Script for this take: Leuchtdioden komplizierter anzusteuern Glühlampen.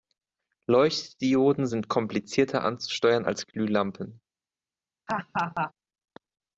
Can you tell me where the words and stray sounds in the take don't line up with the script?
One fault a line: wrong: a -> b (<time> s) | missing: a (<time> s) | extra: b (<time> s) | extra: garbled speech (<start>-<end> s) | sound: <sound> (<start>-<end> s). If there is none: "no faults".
extra: sind (1.6 s)
extra: als (3.2 s)
sound: laugh (5.1-5.7 s)